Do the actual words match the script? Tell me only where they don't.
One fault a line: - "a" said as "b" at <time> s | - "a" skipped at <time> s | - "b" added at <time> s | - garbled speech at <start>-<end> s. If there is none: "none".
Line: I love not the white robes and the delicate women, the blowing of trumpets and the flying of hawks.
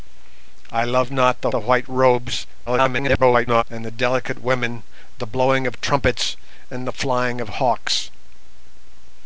- "the" added at 1.5 s
- garbled speech at 2.7-3.6 s